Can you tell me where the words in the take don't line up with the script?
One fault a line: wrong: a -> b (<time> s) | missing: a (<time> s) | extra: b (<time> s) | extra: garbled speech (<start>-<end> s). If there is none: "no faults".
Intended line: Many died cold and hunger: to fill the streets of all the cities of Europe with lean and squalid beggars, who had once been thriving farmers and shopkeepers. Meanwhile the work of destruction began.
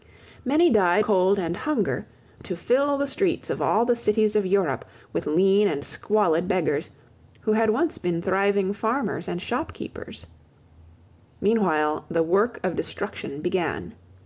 no faults